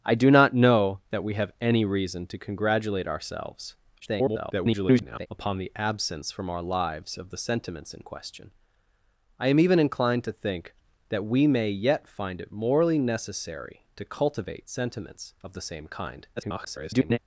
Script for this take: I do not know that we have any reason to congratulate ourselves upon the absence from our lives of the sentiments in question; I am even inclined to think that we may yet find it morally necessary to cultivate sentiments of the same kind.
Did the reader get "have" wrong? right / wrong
right